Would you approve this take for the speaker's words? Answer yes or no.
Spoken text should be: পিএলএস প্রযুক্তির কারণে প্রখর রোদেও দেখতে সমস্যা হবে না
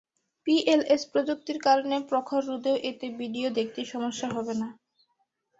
no